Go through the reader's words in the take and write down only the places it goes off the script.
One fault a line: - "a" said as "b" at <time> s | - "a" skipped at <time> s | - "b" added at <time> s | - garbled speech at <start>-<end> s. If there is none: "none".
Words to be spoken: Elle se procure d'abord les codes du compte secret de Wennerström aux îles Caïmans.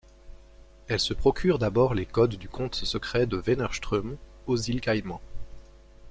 none